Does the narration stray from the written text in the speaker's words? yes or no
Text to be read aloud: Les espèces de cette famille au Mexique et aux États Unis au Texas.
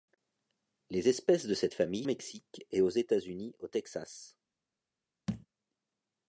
no